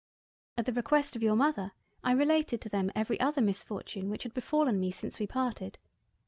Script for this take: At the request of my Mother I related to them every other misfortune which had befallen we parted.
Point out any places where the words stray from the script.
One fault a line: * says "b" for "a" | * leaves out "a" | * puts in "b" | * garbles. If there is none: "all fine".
* says "your" for "my"
* puts in "me since"